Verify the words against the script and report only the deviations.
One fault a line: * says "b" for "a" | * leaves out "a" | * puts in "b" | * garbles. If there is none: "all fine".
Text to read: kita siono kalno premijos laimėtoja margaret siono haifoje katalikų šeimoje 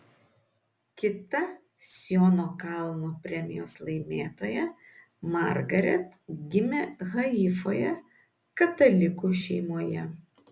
* says "gimė" for "siono"